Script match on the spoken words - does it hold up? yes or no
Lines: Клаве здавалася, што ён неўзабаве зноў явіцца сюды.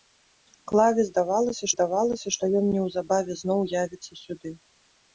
no